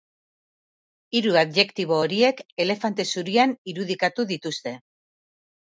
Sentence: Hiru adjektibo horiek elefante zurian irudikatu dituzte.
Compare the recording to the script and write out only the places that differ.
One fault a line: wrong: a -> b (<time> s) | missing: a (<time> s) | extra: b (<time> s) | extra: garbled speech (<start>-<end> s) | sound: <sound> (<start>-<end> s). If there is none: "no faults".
no faults